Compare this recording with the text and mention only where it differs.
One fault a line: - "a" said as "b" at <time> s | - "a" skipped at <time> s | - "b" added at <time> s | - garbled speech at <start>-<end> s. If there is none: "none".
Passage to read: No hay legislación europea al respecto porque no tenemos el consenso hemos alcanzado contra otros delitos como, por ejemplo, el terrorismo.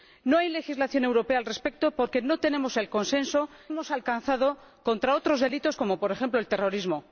none